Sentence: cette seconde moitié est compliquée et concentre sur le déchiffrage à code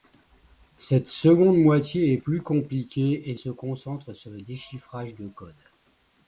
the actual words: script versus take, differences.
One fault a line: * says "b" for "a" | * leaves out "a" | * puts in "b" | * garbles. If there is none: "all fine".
* puts in "plus"
* puts in "se"
* says "de" for "à"